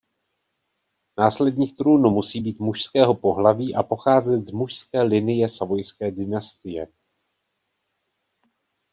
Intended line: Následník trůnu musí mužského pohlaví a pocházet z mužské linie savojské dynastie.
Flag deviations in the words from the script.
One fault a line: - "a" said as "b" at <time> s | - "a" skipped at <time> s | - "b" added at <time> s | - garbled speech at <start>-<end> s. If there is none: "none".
- "být" added at 2.4 s